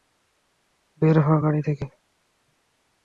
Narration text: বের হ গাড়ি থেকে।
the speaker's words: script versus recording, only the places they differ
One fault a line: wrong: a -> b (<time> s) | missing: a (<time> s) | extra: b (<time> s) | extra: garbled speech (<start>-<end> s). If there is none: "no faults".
no faults